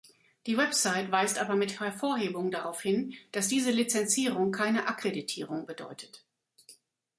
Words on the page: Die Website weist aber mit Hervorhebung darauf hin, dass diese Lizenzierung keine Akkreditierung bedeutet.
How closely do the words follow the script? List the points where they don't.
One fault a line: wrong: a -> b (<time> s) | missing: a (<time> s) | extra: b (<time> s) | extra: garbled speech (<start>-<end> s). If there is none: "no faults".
no faults